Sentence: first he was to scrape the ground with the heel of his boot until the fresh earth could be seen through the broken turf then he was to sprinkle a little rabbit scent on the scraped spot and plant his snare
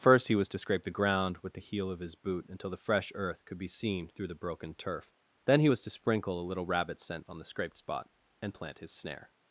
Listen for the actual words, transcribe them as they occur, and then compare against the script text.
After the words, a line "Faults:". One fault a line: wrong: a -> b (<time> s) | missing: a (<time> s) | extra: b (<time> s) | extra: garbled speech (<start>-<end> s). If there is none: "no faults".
first he was to scrape the ground with the heel of his boot until the fresh earth could be seen through the broken turf then he was to sprinkle a little rabbit scent on the scraped spot and plant his snare
Faults:
no faults